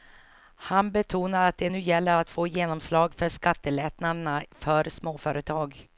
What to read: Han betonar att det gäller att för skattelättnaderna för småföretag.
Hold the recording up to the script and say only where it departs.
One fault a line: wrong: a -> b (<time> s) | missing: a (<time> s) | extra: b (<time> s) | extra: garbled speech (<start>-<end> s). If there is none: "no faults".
extra: nu (1.7 s)
extra: få genomslag (2.3 s)